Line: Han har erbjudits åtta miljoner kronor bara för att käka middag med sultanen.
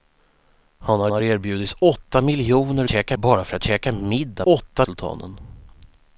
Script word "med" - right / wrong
wrong